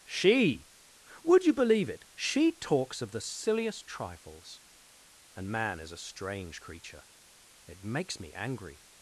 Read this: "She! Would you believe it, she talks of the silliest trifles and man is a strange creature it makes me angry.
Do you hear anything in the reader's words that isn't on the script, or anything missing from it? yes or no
no